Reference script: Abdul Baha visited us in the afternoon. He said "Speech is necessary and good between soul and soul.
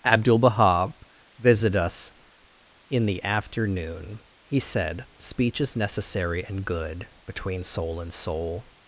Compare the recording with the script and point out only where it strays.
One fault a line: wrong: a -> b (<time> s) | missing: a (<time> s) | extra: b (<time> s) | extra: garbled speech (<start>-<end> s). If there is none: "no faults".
no faults